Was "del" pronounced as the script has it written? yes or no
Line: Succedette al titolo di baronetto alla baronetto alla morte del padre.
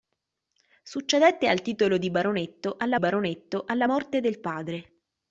yes